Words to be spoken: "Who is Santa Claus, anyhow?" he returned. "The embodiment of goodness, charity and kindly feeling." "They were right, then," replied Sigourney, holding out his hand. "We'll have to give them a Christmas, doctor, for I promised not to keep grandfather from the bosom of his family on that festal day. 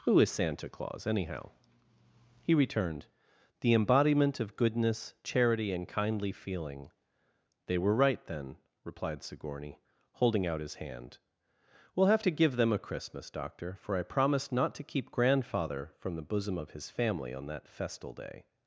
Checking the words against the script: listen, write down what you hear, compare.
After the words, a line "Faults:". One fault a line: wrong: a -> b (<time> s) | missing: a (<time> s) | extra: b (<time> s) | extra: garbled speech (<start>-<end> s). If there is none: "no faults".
"Who is Santa Claus, anyhow?" he returned. "The embodiment of goodness, charity and kindly feeling." "They were right, then," replied Sigourney, holding out his hand. "We'll have to give them a Christmas, doctor, for I promised not to keep grandfather from the bosom of his family on that festal day.
Faults:
no faults